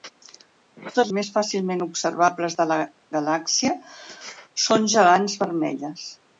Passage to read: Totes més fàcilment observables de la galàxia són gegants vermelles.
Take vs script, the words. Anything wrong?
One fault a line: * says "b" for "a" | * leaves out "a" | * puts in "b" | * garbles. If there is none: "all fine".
all fine